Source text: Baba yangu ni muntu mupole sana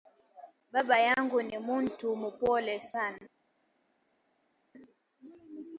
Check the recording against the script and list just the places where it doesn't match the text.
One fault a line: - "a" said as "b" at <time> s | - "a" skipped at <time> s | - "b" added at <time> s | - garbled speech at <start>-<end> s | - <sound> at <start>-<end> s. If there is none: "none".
none